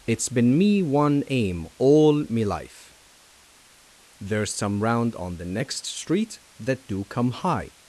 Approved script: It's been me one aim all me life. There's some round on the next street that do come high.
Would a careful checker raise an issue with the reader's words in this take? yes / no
no